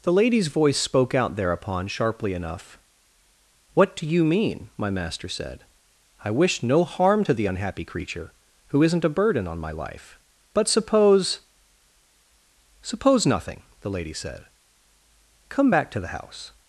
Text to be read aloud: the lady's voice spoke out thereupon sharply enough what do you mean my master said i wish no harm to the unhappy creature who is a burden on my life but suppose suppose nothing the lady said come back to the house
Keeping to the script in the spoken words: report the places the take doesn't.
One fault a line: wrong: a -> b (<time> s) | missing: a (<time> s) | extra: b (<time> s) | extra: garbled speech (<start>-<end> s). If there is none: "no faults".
wrong: is -> isn't (8.8 s)